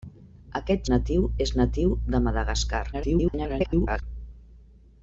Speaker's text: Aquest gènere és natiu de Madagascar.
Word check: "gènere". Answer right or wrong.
wrong